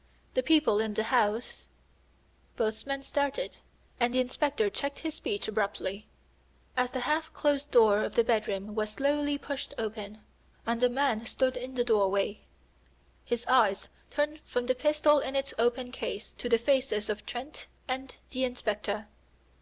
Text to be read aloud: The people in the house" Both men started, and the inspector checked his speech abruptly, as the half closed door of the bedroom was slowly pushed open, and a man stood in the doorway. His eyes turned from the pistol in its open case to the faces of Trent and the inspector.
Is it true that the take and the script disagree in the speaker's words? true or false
false